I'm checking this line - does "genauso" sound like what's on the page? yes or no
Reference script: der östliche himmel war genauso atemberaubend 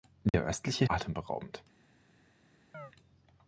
no